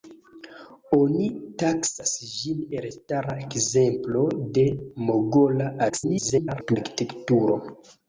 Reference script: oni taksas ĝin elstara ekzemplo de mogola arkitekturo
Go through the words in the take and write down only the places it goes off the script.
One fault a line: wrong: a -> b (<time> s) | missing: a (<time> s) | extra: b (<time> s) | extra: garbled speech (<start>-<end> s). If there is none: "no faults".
extra: garbled speech (5.9-6.8 s)